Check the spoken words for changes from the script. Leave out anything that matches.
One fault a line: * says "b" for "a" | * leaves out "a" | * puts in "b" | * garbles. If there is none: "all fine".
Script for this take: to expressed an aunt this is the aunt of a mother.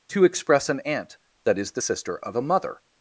* says "express" for "expressed"
* says "that" for "this"
* says "sister" for "aunt"